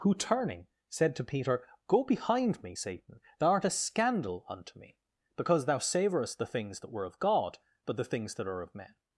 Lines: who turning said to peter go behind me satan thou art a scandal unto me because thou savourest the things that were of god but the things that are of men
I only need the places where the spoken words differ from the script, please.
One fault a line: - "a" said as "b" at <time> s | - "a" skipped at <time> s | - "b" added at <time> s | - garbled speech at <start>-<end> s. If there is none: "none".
none